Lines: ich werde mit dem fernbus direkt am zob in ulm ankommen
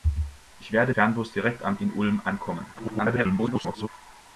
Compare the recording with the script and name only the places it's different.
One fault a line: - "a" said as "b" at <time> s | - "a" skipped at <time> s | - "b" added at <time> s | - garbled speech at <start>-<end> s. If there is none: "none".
- "mit dem" skipped at 0.9 s
- "zob" skipped at 1.8 s
- garbled speech at 2.7-3.9 s